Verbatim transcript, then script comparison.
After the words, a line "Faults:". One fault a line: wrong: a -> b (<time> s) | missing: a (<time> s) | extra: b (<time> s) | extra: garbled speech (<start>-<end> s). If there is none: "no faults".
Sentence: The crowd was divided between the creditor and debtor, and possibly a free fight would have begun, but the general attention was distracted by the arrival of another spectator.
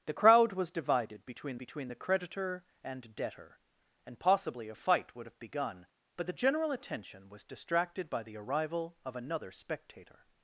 The crowd was divided between between the creditor and debtor, and possibly a fight would have begun, but the general attention was distracted by the arrival of another spectator.
Faults:
extra: between (1.6 s)
missing: free (4.8 s)